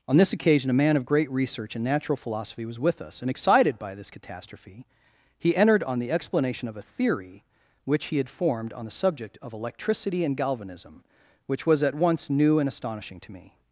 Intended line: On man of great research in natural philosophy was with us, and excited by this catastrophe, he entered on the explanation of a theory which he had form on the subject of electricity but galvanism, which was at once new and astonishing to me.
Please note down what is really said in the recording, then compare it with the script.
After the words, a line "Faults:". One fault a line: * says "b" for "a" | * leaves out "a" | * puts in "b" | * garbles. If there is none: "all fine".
On this occasion a man of great research in natural philosophy was with us, and excited by this catastrophe, he entered on the explanation of a theory which he had formed on the subject of electricity and galvanism, which was at once new and astonishing to me.
Faults:
* puts in "this occasion a"
* says "formed" for "form"
* says "and" for "but"